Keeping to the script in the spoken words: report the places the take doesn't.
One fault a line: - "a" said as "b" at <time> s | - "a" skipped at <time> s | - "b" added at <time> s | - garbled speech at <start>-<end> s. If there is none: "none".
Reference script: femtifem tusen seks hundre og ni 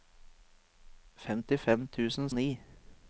- "seks hundre" skipped at 2.3 s